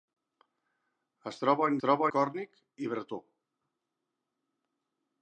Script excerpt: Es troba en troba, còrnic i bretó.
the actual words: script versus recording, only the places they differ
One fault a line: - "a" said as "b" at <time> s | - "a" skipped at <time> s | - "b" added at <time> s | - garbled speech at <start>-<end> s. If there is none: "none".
none